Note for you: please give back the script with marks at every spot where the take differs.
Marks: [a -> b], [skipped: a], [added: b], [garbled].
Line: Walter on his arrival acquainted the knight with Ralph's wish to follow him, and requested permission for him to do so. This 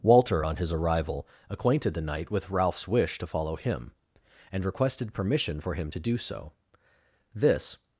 Walter on his arrival acquainted the knight with Ralph's wish to follow him, and requested permission for him to do so. This